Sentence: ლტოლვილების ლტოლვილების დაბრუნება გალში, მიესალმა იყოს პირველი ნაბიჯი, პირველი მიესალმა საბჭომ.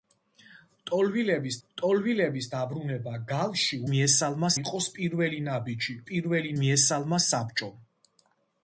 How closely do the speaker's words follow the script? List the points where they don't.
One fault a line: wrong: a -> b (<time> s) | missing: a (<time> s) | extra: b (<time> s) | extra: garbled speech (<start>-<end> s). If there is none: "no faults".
no faults